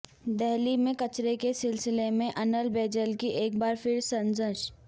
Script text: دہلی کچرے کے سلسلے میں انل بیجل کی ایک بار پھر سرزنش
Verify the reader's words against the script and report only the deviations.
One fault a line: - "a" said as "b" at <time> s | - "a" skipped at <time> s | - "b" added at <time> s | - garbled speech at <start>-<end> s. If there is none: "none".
- "میں" added at 0.8 s